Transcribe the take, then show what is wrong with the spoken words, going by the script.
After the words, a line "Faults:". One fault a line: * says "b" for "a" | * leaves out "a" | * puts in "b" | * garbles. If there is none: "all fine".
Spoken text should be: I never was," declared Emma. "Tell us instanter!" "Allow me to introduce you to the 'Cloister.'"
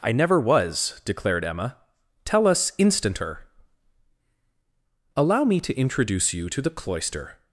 I never was," declared Emma. "Tell us instanter!" "Allow me to introduce you to the 'Cloister.'"
Faults:
all fine